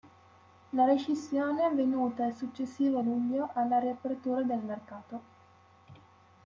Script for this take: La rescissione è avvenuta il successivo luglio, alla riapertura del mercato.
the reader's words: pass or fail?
pass